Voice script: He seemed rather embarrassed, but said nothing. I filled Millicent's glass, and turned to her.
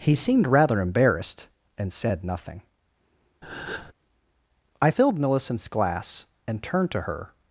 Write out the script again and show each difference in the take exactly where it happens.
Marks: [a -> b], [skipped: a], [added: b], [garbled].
He seemed rather embarrassed, [but -> and] said nothing. I filled Millicent's glass, and turned to her.